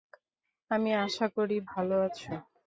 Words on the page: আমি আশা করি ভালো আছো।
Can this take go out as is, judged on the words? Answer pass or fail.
pass